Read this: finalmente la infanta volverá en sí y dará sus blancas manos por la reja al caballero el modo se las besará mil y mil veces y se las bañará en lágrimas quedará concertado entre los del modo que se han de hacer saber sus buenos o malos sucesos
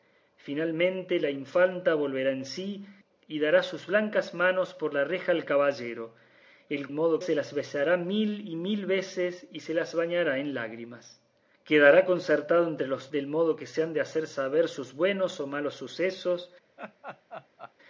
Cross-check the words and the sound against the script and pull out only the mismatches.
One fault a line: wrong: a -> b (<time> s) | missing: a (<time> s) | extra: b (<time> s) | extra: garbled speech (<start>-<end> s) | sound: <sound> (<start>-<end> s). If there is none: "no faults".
sound: laugh (16.8-17.7 s)